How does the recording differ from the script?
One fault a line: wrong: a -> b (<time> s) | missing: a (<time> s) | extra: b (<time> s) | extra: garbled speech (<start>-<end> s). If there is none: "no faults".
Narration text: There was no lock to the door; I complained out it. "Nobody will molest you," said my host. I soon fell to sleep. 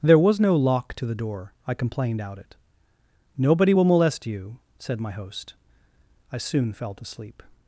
no faults